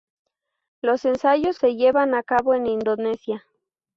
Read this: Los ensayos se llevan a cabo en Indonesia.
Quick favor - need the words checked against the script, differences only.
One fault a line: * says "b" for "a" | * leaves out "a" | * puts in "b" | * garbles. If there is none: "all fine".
all fine